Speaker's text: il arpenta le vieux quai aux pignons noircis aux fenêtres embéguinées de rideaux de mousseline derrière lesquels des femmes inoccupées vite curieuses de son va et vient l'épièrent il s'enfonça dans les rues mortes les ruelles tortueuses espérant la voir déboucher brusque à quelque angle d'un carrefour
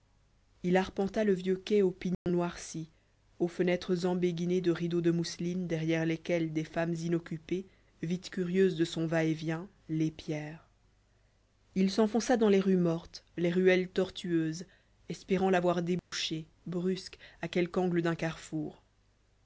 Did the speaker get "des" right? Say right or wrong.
right